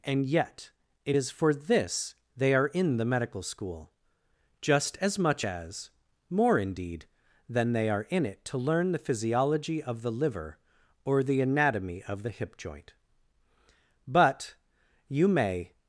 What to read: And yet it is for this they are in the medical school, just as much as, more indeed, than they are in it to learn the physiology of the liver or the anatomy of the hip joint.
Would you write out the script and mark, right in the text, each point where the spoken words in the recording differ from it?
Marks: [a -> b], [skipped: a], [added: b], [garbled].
And yet it is for this they are in the medical school, just as much as, more indeed, than they are in it to learn the physiology of the liver or the anatomy of the hip joint. [added: But you may]